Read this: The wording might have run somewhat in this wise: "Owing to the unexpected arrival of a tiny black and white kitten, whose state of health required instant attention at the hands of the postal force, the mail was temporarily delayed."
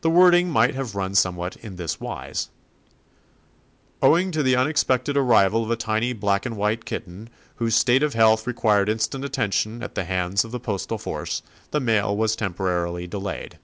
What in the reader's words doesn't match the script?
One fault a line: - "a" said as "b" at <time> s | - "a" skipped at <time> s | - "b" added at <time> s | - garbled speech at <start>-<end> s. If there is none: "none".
none